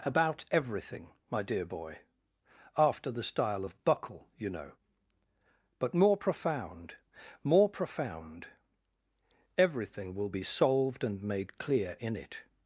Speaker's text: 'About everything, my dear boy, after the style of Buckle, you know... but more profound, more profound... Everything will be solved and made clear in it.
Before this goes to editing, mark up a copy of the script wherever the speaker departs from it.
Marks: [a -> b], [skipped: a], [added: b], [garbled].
'About everything, my dear boy, after the style of Buckle, you know... but more profound, more profound... Everything will be solved and made clear in it.